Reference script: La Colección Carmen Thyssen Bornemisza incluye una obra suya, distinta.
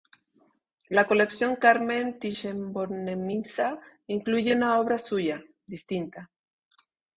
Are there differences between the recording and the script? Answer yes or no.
no